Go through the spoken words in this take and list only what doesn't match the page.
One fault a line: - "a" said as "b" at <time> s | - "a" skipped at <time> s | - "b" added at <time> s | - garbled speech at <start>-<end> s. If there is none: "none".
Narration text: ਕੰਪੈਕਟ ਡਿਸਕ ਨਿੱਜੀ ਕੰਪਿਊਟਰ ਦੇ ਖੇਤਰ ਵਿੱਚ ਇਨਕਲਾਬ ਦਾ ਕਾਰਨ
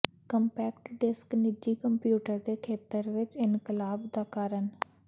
none